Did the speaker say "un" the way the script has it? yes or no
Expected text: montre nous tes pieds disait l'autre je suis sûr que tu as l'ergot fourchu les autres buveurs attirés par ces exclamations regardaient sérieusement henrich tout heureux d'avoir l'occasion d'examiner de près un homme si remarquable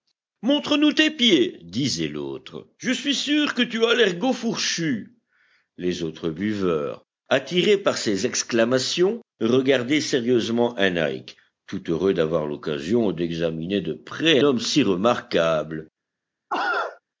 no